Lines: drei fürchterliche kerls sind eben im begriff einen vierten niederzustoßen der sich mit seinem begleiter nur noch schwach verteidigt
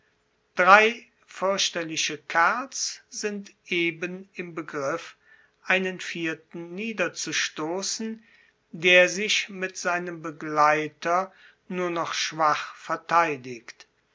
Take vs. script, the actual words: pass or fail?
pass